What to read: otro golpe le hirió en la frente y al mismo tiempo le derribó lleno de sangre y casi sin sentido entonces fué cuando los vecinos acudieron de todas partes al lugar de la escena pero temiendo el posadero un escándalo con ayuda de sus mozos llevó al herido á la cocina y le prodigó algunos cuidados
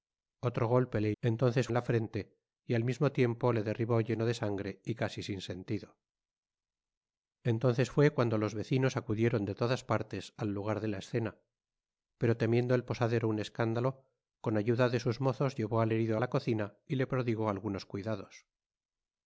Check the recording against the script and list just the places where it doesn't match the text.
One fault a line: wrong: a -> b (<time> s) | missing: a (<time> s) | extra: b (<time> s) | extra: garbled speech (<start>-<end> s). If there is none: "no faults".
wrong: hirió -> entonces (1.2 s)